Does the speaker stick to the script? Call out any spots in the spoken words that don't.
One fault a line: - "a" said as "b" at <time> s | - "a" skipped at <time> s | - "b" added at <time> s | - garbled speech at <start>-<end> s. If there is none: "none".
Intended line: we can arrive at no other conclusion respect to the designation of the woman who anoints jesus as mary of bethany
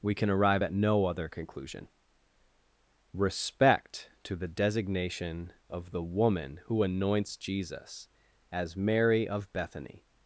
none